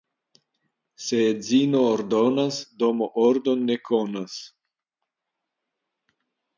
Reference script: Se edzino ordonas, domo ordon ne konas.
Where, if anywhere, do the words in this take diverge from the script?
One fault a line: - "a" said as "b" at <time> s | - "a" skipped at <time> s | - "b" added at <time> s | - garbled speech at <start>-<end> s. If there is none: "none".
none